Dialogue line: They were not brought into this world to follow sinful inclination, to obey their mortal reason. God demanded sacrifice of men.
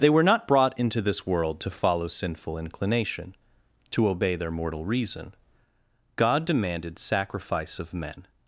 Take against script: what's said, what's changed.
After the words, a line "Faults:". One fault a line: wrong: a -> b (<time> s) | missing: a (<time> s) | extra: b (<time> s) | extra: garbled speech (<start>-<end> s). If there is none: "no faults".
They were not brought into this world to follow sinful inclination, to obey their mortal reason. God demanded sacrifice of men.
Faults:
no faults